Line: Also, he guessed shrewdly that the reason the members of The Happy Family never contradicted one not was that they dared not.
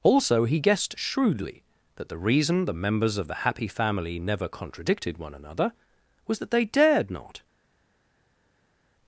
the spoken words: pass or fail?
fail